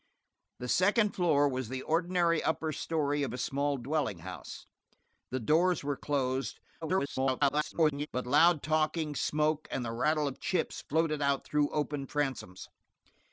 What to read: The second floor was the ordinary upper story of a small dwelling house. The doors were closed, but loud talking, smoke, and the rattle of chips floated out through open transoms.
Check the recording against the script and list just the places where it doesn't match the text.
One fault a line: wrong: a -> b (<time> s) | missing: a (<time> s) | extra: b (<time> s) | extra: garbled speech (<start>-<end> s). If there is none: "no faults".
extra: garbled speech (6.8-8.1 s)